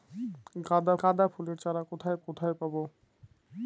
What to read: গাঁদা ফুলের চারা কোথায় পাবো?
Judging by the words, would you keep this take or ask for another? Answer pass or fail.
fail